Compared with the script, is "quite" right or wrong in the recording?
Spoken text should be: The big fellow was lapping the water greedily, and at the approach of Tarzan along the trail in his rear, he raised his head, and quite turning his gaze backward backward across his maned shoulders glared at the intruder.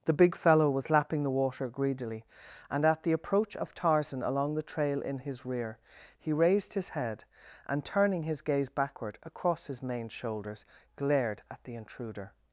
wrong